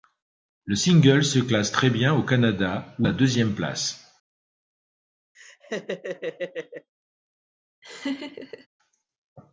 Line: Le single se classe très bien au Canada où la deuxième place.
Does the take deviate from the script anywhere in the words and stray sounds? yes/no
yes